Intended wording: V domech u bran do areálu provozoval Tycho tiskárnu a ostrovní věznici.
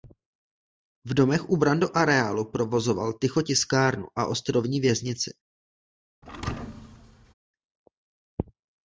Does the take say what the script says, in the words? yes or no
yes